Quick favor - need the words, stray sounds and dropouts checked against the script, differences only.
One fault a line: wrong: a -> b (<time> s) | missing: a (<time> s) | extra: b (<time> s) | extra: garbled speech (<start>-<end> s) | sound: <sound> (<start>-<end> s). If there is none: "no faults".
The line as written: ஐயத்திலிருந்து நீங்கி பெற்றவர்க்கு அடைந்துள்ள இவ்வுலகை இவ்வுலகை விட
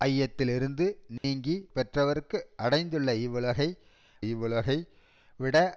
sound: dropout (1.2-1.2 s)